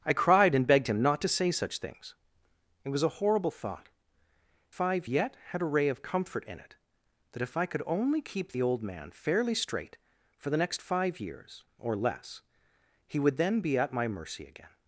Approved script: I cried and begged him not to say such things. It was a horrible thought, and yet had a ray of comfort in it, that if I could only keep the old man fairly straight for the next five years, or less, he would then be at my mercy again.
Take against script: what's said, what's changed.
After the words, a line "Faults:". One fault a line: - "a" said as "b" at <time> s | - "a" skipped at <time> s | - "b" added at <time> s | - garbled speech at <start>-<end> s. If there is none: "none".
I cried and begged him not to say such things. It was a horrible thought, five yet had a ray of comfort in it, that if I could only keep the old man fairly straight for the next five years, or less, he would then be at my mercy again.
Faults:
- "and" said as "five" at 4.7 s